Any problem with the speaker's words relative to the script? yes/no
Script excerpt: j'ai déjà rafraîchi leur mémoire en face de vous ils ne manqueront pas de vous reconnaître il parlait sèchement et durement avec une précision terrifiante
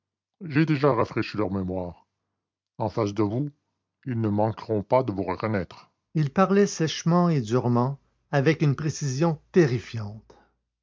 no